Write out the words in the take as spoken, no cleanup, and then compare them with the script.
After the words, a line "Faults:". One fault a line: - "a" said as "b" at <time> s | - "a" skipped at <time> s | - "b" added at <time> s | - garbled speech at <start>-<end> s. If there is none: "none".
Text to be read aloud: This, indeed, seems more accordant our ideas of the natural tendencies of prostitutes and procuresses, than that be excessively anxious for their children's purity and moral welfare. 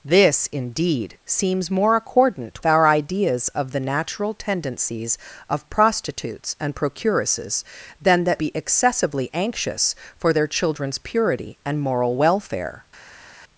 This, indeed, seems more accordant our ideas of the natural tendencies of prostitutes and procuresses, than that be excessively anxious for their children's purity and moral welfare.
Faults:
none